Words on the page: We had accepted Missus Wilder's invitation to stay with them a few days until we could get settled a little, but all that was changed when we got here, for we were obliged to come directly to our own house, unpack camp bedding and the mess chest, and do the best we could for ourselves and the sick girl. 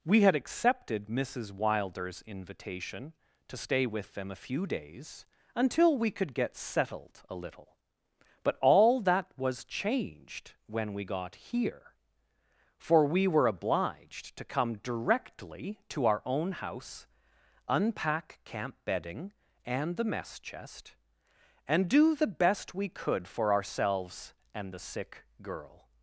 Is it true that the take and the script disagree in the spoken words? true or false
false